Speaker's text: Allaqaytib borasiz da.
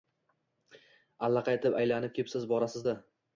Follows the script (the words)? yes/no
no